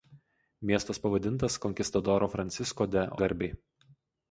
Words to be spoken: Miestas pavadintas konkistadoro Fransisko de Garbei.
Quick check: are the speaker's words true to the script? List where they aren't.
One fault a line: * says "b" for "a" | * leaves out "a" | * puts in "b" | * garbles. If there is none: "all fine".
all fine